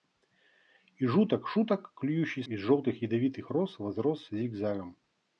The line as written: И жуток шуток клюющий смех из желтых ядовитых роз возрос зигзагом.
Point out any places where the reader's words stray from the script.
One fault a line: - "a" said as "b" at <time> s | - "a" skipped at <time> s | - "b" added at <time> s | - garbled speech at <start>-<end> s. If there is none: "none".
- "смех" skipped at 2.4 s